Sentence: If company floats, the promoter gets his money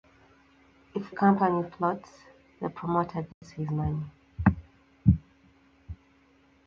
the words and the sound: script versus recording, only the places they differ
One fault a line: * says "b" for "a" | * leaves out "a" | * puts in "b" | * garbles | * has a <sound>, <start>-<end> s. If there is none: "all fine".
* has a dropout, 3.3-3.4 s